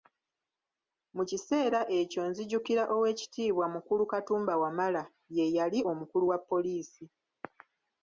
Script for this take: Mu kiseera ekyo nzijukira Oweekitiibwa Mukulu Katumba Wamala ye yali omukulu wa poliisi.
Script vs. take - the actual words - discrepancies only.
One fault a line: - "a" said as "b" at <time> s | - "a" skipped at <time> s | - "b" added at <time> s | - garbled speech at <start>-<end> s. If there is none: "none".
none